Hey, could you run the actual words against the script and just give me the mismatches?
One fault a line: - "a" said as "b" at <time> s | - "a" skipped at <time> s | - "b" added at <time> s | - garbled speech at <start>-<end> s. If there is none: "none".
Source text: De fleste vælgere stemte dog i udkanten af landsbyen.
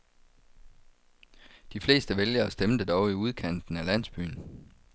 none